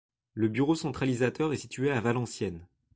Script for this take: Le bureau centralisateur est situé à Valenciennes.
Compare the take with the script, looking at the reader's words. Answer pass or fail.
pass